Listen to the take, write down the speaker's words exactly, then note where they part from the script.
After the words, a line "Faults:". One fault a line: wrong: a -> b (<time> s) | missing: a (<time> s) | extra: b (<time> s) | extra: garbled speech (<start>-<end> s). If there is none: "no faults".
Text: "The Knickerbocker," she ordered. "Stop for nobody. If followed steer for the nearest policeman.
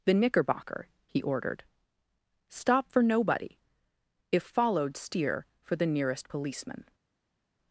"The Knickerbocker," he ordered. "Stop for nobody. If followed steer for the nearest policeman.
Faults:
wrong: she -> he (1.1 s)